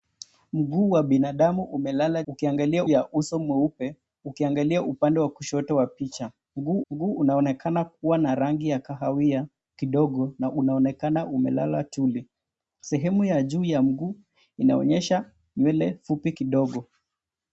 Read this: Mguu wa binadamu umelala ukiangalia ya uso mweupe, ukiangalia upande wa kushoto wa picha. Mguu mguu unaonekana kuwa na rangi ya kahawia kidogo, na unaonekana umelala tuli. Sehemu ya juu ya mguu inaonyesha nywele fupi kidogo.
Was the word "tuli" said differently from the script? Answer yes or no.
no